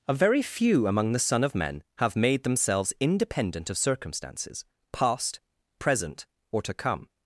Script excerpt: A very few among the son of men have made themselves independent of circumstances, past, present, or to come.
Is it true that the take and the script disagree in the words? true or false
false